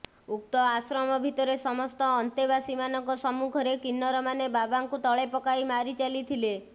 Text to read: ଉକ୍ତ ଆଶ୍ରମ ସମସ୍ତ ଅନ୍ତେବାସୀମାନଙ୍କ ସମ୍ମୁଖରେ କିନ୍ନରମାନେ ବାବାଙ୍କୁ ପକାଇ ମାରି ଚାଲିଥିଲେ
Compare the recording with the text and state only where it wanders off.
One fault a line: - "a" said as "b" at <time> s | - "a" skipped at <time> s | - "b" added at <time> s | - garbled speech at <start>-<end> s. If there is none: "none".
- "ଭିତରେ" added at 1.2 s
- "ତଳେ" added at 5.0 s